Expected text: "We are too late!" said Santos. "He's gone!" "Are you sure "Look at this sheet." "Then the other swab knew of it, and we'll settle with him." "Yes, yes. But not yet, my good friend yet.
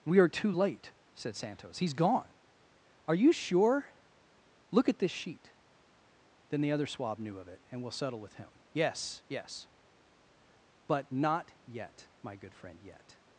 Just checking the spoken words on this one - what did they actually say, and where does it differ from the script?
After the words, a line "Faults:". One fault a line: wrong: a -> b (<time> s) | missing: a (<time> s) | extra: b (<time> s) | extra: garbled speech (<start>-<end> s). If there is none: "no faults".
"We are too late!" said Santos. "He's gone!" "Are you sure "Look at this sheet." "Then the other swab knew of it, and we'll settle with him." "Yes, yes. But not yet, my good friend yet.
Faults:
no faults